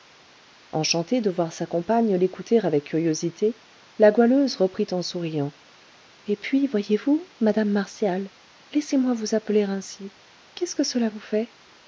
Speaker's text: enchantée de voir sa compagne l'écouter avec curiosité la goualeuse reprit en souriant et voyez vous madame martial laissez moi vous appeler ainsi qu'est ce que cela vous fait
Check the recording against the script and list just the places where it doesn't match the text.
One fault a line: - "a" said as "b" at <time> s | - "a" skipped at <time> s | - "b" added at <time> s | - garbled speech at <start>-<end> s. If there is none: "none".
- "puis" added at 6.3 s